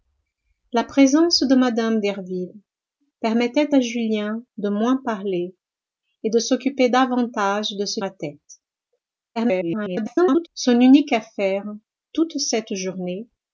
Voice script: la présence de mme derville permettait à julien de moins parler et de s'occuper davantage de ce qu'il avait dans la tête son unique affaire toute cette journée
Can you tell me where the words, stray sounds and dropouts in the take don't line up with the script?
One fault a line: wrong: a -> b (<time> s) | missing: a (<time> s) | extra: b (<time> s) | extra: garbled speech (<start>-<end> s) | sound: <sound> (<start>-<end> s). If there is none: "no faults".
missing: qu'il avait dans (8.0 s)
extra: garbled speech (9.4-10.5 s)